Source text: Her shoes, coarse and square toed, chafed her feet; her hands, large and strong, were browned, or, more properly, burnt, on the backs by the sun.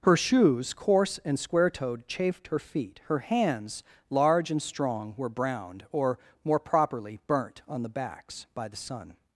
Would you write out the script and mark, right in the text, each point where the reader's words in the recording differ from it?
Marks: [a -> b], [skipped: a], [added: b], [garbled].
Her shoes, coarse and square toed, chafed her feet; her hands, large and strong, were browned, or, more properly, burnt, on the backs by the sun.